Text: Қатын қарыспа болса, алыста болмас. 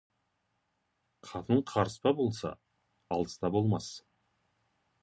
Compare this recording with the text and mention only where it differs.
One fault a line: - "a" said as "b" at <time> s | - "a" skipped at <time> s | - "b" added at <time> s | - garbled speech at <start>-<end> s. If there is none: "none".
none